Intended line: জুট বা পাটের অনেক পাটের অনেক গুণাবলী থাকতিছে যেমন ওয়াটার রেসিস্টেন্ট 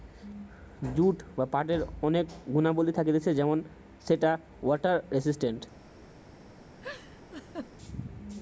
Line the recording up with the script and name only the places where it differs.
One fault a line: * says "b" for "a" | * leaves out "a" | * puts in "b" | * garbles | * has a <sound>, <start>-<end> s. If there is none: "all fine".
* leaves out "পাটের অনেক"
* puts in "সেটা"
* has a laugh, 6.8-7.7 s